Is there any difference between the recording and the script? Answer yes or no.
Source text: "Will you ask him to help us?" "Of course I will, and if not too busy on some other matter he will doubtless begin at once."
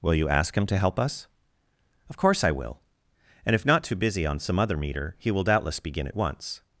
yes